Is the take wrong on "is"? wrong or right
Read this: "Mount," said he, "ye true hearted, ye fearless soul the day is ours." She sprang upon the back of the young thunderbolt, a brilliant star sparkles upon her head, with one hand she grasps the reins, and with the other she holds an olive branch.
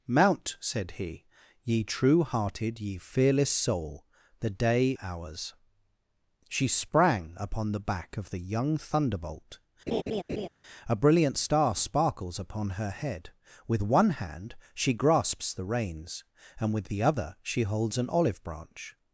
wrong